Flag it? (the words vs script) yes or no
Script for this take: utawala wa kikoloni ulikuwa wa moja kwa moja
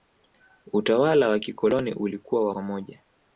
yes